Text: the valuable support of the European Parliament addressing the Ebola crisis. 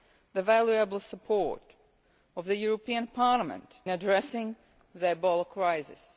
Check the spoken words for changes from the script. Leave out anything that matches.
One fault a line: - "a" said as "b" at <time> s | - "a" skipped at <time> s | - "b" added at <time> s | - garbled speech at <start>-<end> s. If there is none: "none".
none